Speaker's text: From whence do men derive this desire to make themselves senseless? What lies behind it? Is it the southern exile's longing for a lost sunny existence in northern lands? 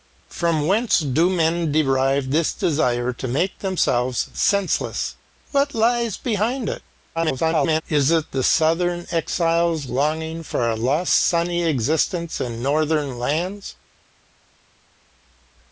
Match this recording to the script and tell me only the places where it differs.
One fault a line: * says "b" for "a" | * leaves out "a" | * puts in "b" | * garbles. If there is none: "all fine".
* garbles